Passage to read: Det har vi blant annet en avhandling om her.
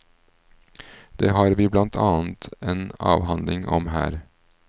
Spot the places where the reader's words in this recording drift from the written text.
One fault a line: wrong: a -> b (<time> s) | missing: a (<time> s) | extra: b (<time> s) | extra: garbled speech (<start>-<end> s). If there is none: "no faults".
no faults